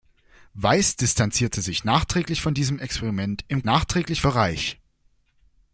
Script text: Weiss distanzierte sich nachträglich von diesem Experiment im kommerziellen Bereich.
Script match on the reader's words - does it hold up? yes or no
no